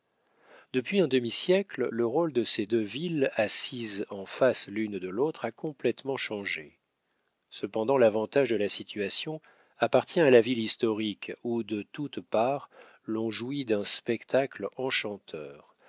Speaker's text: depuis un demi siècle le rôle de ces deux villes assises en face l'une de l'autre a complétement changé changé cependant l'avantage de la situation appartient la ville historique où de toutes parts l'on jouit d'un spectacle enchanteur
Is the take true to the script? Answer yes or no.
no